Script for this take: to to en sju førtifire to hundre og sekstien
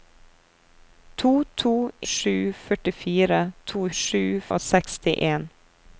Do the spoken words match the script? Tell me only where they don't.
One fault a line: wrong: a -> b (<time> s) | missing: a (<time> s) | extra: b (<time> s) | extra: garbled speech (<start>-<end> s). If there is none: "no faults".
missing: en (1.7 s)
wrong: hundre -> sju (4.0 s)